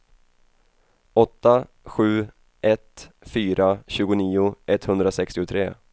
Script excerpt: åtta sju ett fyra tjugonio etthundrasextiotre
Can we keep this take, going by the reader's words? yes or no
yes